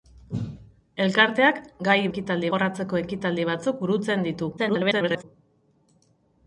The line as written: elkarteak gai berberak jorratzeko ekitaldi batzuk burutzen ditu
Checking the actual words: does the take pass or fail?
fail